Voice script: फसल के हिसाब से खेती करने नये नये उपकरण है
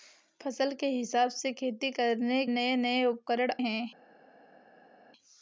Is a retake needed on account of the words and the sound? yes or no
no